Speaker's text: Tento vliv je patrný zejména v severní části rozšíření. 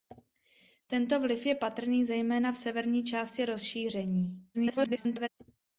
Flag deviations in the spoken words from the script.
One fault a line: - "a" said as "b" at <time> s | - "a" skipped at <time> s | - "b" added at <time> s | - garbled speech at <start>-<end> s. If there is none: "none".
- garbled speech at 4.5-5.3 s